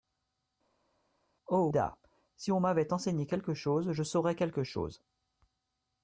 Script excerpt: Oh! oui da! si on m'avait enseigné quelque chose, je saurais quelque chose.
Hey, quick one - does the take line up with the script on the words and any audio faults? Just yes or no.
no